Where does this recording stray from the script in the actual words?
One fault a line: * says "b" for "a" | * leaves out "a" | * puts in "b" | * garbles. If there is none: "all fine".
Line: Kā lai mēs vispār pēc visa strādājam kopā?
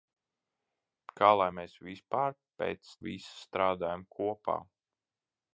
all fine